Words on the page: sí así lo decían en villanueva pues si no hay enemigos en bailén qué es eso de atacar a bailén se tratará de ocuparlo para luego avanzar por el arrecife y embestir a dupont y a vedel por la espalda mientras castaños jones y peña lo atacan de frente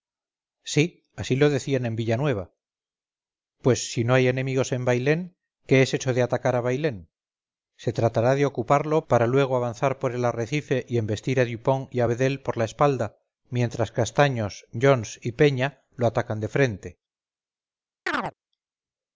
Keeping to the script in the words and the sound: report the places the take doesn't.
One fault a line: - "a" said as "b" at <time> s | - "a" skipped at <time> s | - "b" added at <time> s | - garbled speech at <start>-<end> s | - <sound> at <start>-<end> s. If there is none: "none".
- chirp at 18.1-18.3 s